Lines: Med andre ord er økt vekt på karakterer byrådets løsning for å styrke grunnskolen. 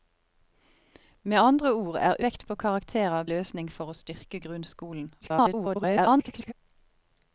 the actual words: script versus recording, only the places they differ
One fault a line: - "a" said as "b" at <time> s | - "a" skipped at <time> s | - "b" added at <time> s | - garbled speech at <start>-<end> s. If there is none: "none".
- "økt" skipped at 2.1 s
- "byrådets" skipped at 3.2 s
- garbled speech at 5.2-6.5 s